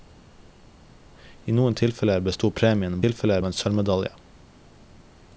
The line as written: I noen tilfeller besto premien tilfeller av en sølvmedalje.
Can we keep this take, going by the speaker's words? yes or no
yes